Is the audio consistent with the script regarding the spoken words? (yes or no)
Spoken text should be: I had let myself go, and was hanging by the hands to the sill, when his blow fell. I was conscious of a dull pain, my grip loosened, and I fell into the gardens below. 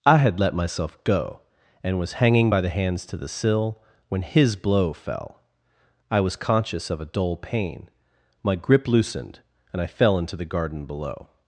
no